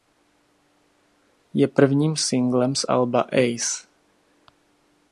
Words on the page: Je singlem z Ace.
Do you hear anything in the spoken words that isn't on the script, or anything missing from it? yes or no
yes